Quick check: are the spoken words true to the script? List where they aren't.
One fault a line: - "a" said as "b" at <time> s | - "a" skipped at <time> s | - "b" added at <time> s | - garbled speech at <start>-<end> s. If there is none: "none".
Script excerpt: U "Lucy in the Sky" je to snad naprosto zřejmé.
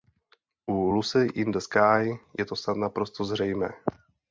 none